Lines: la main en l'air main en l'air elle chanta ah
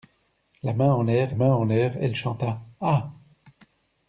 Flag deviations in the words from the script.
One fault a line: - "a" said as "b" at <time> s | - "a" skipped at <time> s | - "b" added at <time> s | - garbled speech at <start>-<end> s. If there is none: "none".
none